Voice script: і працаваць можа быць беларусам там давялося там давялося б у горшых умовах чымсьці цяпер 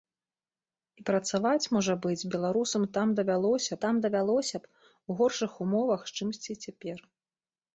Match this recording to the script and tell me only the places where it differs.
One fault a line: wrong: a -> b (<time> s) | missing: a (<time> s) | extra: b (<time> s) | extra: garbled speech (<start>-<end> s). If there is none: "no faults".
no faults